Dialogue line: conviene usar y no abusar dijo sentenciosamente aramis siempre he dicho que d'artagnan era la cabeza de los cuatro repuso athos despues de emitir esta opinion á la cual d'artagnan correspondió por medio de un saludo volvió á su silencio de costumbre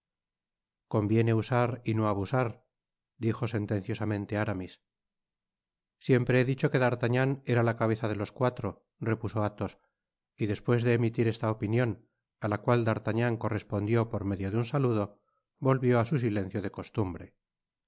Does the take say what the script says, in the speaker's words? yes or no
no